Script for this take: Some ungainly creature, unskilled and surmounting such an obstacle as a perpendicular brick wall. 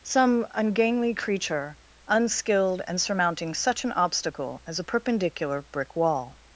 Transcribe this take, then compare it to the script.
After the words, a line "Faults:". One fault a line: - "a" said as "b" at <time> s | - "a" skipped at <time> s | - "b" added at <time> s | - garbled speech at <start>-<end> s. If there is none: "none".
Some ungainly creature, unskilled and surmounting such an obstacle as a perpendicular brick wall.
Faults:
none